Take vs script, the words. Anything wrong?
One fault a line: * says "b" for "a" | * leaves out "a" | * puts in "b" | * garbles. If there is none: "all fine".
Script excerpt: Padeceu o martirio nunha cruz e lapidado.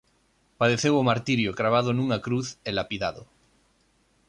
* puts in "cravado"